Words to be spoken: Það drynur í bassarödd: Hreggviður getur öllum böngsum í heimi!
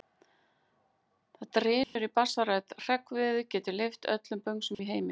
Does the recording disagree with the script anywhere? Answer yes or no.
yes